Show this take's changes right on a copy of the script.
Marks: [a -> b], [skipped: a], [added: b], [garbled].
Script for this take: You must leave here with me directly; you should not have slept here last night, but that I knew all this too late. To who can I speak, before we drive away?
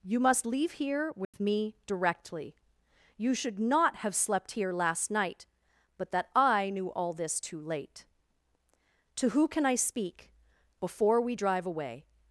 You must leave here with me directly; you should not have slept here last night, but that I knew all this too late. To who can I speak, before we drive away?